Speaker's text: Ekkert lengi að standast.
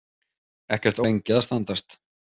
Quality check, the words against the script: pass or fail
pass